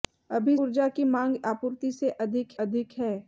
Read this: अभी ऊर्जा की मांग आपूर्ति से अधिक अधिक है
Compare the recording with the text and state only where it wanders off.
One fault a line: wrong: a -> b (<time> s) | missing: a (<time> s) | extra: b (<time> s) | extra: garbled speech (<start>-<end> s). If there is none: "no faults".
no faults